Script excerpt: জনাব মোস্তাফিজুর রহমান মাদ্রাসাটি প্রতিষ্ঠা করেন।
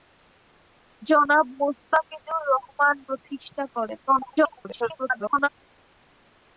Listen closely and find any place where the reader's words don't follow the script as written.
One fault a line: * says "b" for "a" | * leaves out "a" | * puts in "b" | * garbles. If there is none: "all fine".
* leaves out "মাদ্রাসাটি"
* garbles